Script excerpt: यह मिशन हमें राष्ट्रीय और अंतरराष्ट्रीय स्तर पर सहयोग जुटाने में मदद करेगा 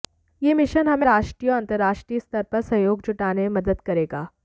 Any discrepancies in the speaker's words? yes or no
no